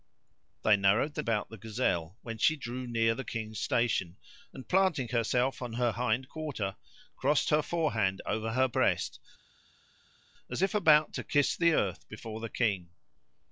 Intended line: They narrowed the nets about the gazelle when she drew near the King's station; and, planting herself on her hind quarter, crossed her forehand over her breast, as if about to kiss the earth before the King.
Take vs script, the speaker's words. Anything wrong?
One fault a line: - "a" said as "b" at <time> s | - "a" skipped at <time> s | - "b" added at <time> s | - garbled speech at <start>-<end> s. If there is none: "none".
- "nets" skipped at 1.2 s